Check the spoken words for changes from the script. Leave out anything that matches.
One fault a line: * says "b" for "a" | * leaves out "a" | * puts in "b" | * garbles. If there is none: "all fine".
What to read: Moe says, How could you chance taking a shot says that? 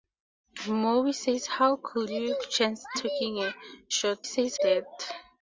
all fine